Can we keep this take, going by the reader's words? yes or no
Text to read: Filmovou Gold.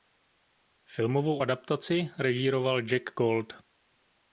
no